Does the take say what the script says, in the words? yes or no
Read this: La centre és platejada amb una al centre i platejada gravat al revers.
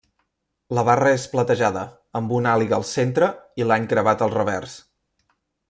no